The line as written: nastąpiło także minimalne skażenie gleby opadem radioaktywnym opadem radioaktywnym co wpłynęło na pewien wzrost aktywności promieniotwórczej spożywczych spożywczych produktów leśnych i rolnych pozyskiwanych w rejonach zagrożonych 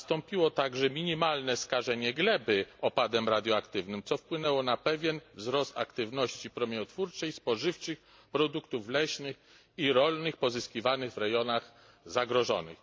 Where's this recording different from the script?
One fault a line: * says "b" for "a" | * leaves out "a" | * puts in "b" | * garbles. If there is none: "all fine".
* leaves out "opadem radioaktywnym"
* leaves out "spożywczych"